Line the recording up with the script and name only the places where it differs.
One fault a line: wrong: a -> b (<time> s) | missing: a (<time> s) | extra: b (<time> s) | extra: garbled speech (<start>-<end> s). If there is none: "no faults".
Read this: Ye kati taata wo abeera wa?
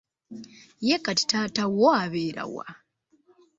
no faults